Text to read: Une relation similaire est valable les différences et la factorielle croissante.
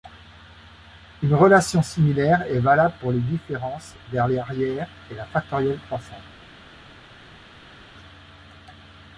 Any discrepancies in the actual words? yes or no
yes